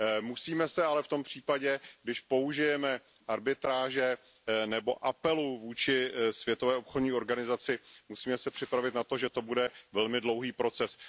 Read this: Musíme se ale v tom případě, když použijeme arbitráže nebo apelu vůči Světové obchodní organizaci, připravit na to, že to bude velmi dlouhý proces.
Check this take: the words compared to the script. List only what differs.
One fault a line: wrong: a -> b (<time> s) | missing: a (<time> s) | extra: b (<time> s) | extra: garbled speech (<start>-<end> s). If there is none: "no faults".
no faults